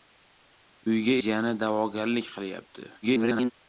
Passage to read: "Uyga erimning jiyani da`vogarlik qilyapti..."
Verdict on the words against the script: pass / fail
fail